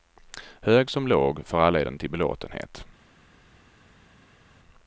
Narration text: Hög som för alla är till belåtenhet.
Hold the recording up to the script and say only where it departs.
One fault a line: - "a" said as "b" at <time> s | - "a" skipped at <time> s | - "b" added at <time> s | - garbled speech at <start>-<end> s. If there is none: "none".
- "låg" added at 1.1 s
- "den" added at 1.8 s